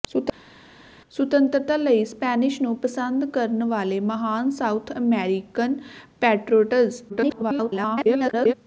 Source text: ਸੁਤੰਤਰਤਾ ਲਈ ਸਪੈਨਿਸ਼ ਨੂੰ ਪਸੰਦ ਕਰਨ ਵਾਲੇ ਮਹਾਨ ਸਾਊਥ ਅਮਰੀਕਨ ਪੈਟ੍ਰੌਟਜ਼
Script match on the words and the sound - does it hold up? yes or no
no